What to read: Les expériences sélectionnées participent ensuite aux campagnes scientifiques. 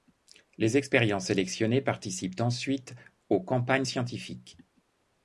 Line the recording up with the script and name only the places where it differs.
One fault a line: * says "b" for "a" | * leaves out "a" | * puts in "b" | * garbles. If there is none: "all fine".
all fine